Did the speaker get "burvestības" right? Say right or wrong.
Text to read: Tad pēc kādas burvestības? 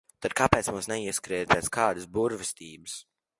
right